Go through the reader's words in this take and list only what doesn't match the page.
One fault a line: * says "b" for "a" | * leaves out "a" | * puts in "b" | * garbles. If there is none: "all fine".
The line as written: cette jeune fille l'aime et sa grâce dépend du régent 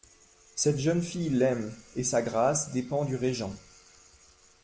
all fine